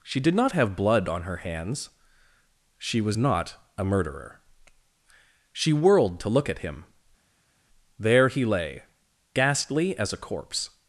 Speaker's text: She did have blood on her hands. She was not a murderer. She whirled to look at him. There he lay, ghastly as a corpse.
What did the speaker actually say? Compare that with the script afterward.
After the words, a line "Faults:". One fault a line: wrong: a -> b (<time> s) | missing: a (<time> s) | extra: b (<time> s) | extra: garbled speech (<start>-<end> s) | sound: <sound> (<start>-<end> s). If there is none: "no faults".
She did not have blood on her hands. She was not a murderer. She whirled to look at him. There he lay, ghastly as a corpse.
Faults:
extra: not (0.3 s)